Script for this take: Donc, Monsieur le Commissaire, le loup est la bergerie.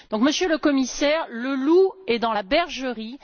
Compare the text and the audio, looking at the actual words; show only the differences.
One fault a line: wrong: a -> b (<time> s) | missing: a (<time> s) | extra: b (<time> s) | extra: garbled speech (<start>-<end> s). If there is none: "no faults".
extra: dans (2.2 s)